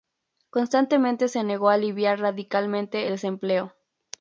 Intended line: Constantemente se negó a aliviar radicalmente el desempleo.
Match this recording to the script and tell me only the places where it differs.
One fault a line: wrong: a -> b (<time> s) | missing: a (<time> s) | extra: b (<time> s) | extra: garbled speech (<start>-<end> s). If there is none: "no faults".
missing: el (3.1 s)